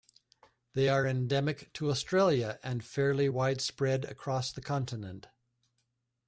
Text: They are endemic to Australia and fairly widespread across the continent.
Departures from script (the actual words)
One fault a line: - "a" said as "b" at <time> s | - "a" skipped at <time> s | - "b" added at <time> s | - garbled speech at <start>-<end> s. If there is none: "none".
none